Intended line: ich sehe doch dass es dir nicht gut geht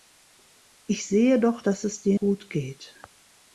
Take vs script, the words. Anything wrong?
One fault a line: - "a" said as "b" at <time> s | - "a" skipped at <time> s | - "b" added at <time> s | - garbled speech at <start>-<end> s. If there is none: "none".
- "nicht" skipped at 2.2 s